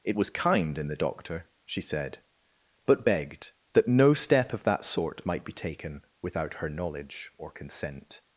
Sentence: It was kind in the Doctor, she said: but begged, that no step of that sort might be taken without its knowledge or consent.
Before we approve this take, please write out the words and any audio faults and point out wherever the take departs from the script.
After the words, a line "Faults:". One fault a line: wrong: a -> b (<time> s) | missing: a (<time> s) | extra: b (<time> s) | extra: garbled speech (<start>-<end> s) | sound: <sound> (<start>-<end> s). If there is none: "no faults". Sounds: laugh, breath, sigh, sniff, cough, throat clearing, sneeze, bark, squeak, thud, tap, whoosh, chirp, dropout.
It was kind in the Doctor, she said: but begged, that no step of that sort might be taken without her knowledge or consent.
Faults:
wrong: its -> her (6.5 s)